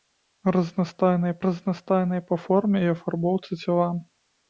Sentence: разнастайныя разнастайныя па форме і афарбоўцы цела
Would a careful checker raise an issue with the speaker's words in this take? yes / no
no